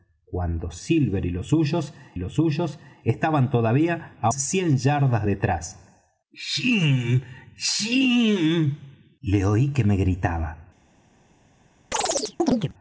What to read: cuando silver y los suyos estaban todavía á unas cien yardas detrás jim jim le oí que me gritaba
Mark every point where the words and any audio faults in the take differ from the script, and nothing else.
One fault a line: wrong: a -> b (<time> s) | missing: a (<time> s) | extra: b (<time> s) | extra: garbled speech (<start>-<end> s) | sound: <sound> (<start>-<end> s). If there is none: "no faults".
extra: los suyos (2.2 s)
missing: unas (4.3 s)
sound: chirp (11.9-12.7 s)